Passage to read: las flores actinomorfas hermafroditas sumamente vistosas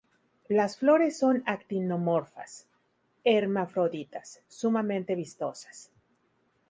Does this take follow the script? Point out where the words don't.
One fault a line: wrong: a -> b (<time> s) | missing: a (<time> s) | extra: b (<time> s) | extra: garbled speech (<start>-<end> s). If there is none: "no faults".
extra: son (1.2 s)